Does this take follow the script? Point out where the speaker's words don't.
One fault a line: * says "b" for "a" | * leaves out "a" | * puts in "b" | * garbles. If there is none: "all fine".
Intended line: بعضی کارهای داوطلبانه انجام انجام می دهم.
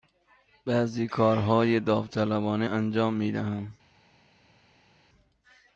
* leaves out "انجام"